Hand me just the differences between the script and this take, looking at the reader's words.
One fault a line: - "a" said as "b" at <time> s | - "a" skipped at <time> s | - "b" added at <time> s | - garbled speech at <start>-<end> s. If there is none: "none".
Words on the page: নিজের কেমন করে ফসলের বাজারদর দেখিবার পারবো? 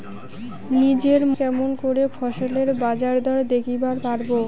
none